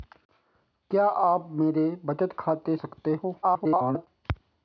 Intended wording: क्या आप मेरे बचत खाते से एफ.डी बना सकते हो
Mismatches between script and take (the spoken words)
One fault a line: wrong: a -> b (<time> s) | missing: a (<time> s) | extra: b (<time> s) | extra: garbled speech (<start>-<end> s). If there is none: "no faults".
missing: से एफ.डी बना (2.8 s)
extra: garbled speech (3.4-4.1 s)